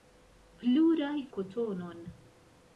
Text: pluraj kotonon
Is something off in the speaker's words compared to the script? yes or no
no